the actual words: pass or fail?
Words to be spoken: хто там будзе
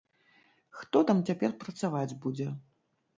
fail